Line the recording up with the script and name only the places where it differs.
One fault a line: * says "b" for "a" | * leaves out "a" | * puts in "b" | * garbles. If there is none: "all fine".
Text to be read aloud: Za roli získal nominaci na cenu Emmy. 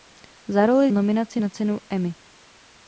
* leaves out "získal"